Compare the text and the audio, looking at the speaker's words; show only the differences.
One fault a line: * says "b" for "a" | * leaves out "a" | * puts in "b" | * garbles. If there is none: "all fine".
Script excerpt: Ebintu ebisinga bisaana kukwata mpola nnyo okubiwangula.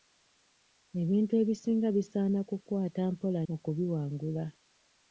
* leaves out "nnyo"